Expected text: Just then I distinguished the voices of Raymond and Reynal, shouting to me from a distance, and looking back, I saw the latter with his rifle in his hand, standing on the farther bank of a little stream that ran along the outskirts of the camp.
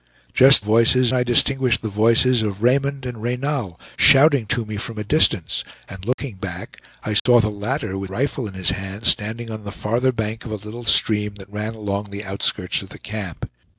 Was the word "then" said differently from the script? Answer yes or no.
yes